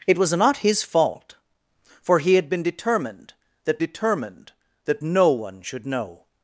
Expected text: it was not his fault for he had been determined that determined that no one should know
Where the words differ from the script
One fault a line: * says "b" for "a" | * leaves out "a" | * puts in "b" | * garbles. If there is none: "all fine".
all fine